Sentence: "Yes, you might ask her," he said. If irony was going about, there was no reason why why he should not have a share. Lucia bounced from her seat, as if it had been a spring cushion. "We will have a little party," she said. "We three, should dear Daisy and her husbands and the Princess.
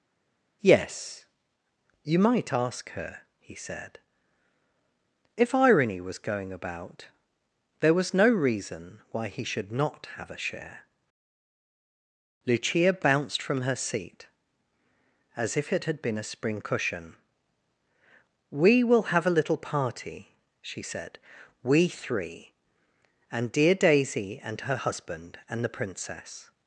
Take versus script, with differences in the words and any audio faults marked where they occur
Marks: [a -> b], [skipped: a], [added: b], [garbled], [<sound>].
"Yes, you might ask her," he said. If irony was going about, there was no reason why [skipped: why] he should not have a share. Lucia bounced from her seat, as if it had been a spring cushion. "We will have a little party," she said. "We three, [should -> and] dear Daisy and her [husbands -> husband] and the Princess.